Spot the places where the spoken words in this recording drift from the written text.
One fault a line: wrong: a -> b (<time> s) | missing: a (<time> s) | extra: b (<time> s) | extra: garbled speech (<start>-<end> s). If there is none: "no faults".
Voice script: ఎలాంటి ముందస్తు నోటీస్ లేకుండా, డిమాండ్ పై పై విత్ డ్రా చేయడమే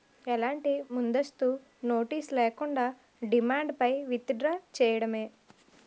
missing: పై (3.9 s)